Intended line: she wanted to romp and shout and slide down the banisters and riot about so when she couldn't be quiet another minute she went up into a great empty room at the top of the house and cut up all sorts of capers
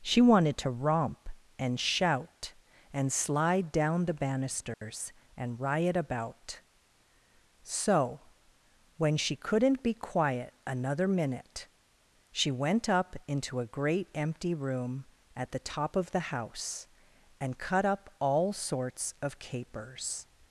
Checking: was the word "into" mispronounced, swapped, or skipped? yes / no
no